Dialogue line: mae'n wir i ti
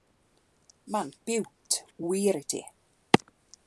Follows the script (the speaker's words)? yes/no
no